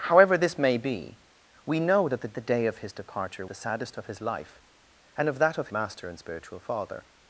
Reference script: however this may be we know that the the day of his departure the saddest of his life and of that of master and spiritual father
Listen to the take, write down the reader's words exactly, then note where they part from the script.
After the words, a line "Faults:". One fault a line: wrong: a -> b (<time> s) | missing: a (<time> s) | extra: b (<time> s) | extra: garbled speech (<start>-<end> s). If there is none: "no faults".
however this may be we know that the the day of his departure the saddest of his life and of that of master and spiritual father
Faults:
no faults